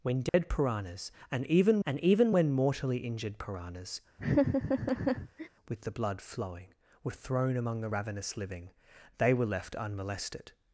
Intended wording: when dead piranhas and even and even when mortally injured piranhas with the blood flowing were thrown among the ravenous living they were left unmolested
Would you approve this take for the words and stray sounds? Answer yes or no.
no